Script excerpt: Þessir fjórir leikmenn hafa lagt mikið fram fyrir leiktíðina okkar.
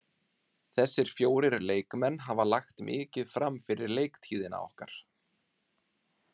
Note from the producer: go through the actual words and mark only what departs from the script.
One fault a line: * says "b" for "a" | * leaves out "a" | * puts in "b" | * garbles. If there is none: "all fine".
all fine